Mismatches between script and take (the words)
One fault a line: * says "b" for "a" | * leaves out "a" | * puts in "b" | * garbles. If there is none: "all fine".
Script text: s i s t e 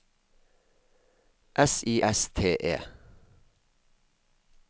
all fine